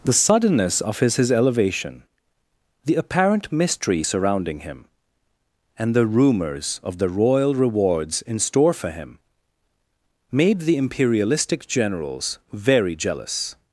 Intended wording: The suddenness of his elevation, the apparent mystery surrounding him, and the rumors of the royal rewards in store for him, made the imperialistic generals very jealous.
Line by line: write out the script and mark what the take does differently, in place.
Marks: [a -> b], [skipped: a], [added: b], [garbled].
The suddenness of his [added: his] elevation, the apparent mystery surrounding him, and the rumors of the royal rewards in store for him, made the imperialistic generals very jealous.